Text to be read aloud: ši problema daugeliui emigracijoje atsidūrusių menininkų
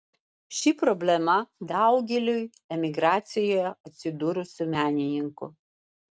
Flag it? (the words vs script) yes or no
no